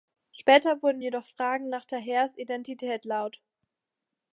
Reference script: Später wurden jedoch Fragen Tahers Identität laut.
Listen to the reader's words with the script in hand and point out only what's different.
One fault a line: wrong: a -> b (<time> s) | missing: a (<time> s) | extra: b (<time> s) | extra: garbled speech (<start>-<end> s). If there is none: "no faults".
extra: nach (1.7 s)